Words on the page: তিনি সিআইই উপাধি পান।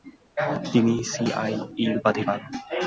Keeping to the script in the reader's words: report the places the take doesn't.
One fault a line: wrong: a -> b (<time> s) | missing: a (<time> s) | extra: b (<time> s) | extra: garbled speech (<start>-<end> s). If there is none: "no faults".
no faults